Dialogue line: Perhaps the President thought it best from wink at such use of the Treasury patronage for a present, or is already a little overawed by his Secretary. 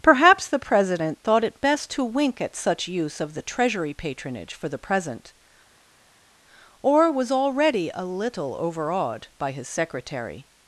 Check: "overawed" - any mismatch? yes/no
no